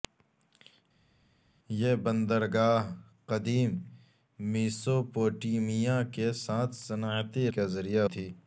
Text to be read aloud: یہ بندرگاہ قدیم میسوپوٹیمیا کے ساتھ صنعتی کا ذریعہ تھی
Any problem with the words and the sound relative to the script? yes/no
no